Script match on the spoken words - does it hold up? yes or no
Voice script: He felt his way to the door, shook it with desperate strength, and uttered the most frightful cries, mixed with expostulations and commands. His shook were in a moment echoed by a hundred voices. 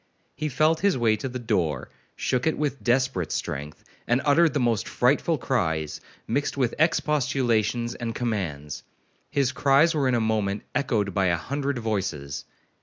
no